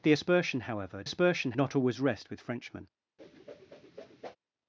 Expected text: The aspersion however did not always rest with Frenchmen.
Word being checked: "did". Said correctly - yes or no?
no